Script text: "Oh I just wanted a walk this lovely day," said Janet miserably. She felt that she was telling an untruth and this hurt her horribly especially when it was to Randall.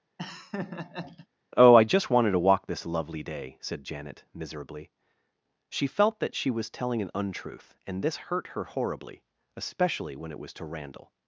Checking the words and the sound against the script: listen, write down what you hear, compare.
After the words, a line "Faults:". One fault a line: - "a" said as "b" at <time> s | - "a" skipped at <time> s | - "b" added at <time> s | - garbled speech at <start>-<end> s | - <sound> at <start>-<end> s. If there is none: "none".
"Oh I just wanted to walk this lovely day," said Janet miserably. She felt that she was telling an untruth and this hurt her horribly especially when it was to Randall.
Faults:
- laugh at 0.2-1.3 s
- "a" said as "to" at 2.3 s